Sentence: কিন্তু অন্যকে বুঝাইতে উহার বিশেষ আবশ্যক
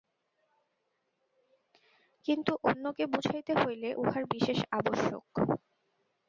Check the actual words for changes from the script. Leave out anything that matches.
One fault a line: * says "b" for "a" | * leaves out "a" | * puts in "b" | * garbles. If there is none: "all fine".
* puts in "হইলে"